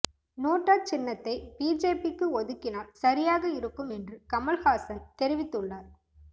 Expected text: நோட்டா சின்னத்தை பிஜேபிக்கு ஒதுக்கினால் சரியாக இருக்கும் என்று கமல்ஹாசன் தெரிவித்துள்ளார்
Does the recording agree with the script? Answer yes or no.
yes